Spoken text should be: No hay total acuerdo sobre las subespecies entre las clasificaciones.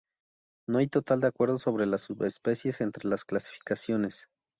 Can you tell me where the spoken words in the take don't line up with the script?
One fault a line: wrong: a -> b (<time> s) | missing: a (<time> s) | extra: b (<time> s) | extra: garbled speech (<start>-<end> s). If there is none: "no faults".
no faults